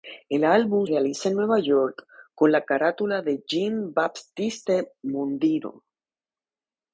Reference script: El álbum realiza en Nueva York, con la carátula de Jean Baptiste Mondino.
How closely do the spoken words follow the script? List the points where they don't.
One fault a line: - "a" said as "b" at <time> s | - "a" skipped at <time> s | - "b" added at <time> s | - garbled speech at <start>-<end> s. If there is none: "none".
none